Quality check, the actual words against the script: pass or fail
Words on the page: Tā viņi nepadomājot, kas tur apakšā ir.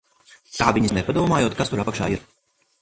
pass